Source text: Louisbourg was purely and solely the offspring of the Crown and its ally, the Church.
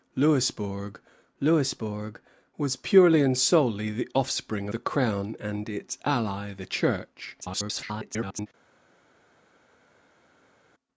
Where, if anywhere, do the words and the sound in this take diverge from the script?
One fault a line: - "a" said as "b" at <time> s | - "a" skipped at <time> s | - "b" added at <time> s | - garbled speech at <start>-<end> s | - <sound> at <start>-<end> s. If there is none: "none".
- "louisbourg" added at 1.4 s
- "of" skipped at 4.7 s
- garbled speech at 7.4-8.5 s